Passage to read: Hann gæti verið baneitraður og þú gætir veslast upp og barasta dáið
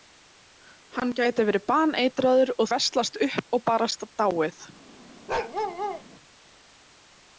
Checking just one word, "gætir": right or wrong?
wrong